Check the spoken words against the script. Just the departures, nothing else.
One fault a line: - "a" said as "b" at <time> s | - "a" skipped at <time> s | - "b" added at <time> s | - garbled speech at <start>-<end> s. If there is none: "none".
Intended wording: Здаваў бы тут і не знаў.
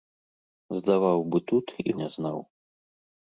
none